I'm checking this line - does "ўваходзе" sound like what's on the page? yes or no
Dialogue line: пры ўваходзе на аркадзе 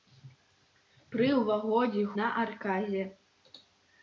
yes